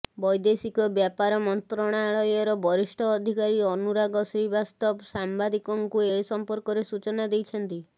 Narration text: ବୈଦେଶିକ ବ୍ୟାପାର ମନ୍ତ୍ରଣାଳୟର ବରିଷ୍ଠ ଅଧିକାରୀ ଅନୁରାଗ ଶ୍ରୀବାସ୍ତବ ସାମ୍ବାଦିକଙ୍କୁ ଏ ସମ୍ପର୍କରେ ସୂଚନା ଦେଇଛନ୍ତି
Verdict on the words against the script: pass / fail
pass